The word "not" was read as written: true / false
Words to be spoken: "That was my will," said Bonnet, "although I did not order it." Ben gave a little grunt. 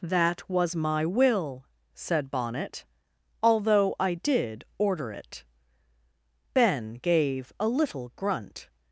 false